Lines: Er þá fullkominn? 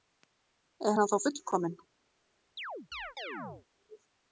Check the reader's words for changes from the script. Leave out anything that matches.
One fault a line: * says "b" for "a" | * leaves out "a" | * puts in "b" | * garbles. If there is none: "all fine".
* puts in "hann"